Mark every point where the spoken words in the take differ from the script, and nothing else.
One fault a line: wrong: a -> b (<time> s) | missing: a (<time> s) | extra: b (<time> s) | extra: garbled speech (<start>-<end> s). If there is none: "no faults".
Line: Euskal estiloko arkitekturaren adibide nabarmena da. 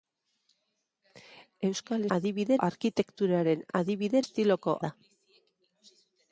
wrong: estiloko -> adibide (2.2 s)
wrong: nabarmena -> estiloko (4.2 s)